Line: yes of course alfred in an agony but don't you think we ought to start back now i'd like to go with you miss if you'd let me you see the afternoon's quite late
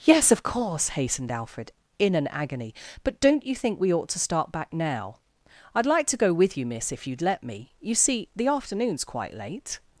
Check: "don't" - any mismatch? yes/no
no